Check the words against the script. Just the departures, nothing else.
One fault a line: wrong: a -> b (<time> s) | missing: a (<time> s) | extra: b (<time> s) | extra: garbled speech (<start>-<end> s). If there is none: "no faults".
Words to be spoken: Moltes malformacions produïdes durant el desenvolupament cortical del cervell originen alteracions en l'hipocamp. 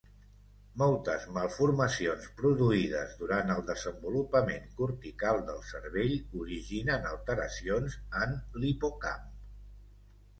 no faults